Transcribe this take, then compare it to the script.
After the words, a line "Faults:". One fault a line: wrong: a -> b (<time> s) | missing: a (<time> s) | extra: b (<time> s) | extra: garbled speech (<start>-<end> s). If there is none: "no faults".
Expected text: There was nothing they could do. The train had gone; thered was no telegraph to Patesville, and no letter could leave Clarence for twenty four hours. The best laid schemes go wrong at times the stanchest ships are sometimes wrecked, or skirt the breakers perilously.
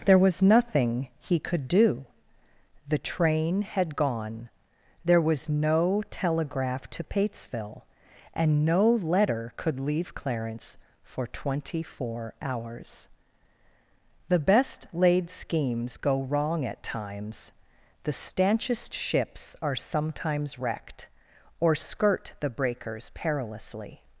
There was nothing he could do. The train had gone; there was no telegraph to Patesville, and no letter could leave Clarence for twenty four hours. The best laid schemes go wrong at times the stanchest ships are sometimes wrecked, or skirt the breakers perilously.
Faults:
wrong: they -> he (1.2 s)
wrong: thered -> there (5.0 s)